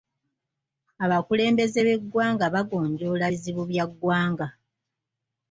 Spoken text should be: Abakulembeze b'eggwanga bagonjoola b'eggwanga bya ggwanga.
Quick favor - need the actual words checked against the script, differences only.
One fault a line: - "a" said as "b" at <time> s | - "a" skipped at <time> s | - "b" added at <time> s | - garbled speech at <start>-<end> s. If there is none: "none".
- "b'eggwanga" said as "bizibu" at 3.3 s